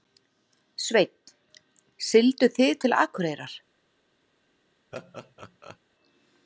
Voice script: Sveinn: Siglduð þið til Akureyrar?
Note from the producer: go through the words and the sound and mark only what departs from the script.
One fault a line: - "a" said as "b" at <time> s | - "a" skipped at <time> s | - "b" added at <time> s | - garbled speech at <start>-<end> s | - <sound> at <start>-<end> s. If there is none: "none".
- laugh at 4.9-5.8 s